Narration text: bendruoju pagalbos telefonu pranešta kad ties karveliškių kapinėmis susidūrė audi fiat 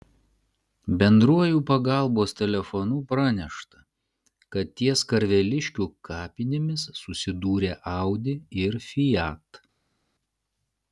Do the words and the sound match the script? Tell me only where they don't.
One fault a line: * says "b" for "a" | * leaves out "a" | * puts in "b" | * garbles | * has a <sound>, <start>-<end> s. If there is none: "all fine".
* puts in "ir"